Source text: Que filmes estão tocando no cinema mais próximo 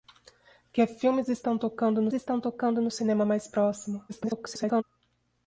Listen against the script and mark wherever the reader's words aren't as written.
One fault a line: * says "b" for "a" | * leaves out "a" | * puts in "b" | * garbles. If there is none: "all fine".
* puts in "estão tocando no"
* garbles